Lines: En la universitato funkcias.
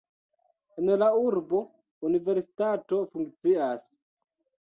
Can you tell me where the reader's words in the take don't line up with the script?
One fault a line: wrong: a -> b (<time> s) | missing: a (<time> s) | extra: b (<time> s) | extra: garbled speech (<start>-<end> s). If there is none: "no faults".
extra: urbo (1.2 s)